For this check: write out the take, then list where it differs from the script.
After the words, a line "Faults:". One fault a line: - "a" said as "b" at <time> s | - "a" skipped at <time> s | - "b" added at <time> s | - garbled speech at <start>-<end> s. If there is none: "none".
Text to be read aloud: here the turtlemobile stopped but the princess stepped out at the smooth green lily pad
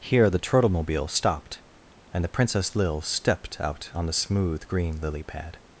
here the turtlemobile stopped and the princess lil stepped out on the smooth green lily pad
Faults:
- "but" said as "and" at 2.1 s
- "lil" added at 2.8 s
- "at" said as "on" at 3.9 s